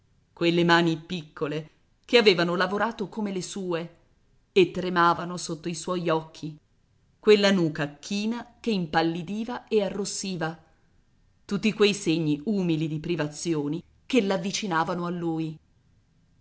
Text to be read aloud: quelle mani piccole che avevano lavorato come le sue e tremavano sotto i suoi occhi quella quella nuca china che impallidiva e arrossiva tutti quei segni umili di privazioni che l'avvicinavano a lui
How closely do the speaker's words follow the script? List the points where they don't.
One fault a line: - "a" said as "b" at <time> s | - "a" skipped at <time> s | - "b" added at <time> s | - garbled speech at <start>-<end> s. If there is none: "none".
- "quella" skipped at 7.5 s